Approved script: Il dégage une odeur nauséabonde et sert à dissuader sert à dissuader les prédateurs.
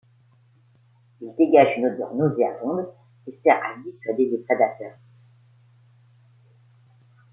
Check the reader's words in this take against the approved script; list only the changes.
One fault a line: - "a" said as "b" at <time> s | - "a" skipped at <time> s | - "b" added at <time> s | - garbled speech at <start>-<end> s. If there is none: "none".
- "sert à dissuader" skipped at 4.3 s